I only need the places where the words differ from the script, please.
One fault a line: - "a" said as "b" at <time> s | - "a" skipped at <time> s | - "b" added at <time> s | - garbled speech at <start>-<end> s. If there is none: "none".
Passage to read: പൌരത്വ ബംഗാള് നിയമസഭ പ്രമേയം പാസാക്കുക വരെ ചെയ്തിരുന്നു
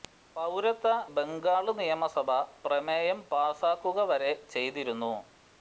none